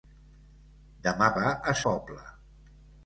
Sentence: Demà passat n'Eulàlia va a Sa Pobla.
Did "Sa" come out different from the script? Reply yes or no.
yes